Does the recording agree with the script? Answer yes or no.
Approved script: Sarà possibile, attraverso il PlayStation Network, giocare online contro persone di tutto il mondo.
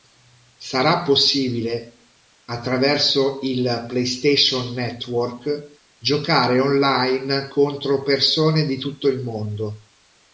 yes